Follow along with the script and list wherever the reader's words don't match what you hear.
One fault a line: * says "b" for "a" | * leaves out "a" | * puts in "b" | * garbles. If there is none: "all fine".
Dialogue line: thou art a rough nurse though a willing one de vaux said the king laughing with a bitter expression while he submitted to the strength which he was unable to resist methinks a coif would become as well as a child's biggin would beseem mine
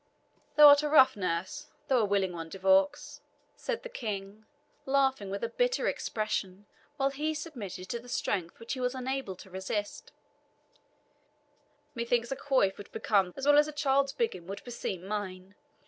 all fine